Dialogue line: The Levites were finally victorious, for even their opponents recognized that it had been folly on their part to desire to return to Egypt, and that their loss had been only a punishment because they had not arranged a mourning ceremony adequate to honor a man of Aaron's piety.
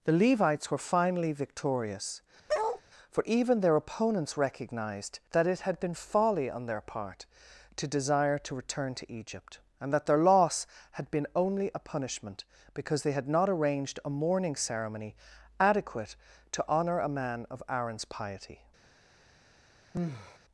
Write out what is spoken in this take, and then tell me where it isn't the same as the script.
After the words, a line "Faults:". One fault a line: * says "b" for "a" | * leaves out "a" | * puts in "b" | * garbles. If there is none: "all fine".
The Levites were finally victorious, for even their opponents recognized that it had been folly on their part to desire to return to Egypt, and that their loss had been only a punishment because they had not arranged a mourning ceremony adequate to honor a man of Aaron's piety.
Faults:
all fine